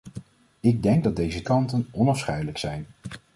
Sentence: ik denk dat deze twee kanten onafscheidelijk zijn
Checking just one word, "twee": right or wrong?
wrong